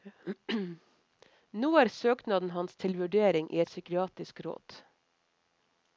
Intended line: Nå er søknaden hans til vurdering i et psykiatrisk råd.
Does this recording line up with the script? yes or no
yes